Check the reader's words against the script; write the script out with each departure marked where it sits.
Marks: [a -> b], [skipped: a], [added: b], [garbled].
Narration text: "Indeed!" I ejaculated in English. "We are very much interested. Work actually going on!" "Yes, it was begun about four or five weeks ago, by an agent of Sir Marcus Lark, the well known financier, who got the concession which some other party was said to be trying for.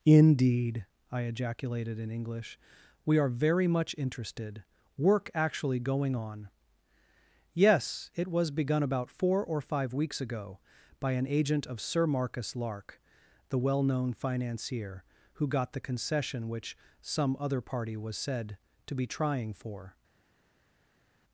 "Indeed!" I ejaculated in English. "We are very much interested. Work actually going on!" "Yes, it was begun about four or five weeks ago, by an agent of Sir Marcus Lark, the well known financier, who got the concession which some other party was said to be trying for.